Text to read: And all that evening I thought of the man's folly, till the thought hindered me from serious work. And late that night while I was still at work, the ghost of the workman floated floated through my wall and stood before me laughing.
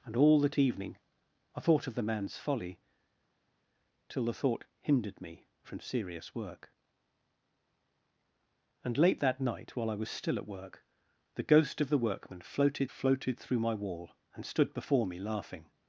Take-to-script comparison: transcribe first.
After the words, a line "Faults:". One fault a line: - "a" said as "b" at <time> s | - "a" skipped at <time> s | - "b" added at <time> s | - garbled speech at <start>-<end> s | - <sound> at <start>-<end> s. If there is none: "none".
And all that evening I thought of the man's folly, till the thought hindered me from serious work. And late that night while I was still at work, the ghost of the workman floated floated through my wall and stood before me laughing.
Faults:
none